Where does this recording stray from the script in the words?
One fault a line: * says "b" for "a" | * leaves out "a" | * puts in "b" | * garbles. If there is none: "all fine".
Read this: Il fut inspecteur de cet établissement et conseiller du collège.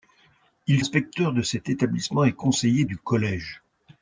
* leaves out "fut"